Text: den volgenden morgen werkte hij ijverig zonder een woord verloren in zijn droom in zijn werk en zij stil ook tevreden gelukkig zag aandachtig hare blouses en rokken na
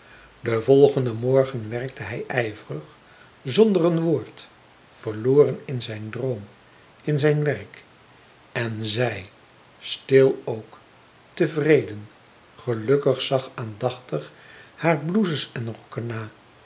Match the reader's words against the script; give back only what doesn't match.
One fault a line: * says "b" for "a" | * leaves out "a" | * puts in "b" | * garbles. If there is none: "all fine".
all fine